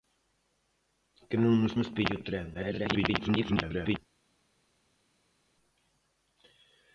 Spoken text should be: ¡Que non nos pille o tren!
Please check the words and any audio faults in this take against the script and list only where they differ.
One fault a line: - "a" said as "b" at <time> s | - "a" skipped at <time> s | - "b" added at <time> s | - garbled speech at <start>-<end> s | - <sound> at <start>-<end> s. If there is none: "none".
- "nos" added at 1.8 s
- garbled speech at 2.5-4.0 s